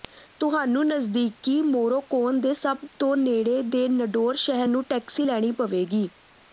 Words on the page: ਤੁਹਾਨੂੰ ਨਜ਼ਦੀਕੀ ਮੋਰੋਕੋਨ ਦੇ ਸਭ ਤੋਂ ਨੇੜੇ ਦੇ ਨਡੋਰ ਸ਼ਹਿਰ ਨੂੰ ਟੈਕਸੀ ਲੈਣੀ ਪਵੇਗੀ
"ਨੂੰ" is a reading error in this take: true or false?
false